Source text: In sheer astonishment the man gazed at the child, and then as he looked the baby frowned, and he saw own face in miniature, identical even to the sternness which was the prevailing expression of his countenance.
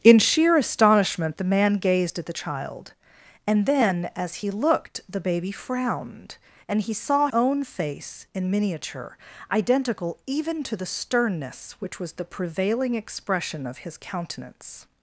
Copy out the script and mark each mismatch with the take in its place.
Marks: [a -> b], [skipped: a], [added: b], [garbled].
In sheer astonishment the man gazed at the child, and then as he looked the baby frowned, and he saw own face in miniature, identical even to the sternness which was the prevailing expression of his countenance.